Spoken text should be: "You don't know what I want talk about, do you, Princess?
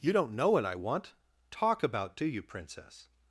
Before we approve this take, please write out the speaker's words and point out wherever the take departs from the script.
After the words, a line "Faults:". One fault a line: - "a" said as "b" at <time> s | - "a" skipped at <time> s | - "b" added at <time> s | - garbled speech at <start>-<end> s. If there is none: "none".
"You don't know what I want talk about, do you, Princess?
Faults:
none